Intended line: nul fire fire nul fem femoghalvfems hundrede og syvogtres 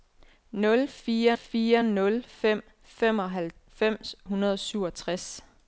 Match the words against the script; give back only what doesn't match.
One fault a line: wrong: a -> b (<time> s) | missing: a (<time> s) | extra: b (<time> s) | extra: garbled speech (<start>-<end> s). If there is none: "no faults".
no faults